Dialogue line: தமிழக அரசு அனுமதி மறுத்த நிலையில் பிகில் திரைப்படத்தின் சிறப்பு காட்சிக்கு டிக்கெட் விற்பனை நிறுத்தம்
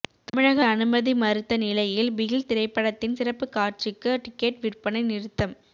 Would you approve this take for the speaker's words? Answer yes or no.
no